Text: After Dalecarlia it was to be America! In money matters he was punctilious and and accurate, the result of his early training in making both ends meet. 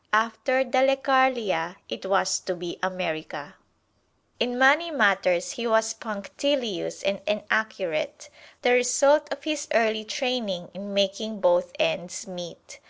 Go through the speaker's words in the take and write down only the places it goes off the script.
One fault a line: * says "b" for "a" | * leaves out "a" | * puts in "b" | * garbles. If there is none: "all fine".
all fine